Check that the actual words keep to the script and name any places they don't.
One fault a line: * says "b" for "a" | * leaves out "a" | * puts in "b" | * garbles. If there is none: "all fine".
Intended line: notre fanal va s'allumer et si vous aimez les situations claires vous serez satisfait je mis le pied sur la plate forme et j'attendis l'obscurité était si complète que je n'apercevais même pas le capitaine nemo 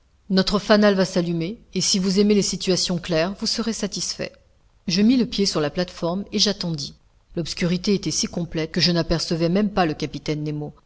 all fine